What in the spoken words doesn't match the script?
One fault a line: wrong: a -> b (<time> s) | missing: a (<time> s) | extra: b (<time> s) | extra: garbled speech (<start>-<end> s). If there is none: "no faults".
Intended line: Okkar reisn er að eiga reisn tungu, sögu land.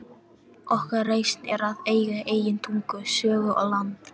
wrong: reisn -> eigin (2.3 s)
extra: og (3.5 s)